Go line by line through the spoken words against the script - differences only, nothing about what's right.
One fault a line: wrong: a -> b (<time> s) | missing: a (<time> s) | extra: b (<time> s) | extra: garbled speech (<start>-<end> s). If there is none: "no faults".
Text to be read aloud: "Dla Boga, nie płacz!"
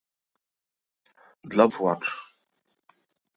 missing: Boga nie (1.7 s)